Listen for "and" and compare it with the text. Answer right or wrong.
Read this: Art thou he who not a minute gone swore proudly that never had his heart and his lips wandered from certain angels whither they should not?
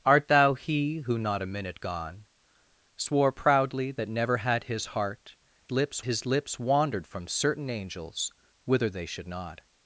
wrong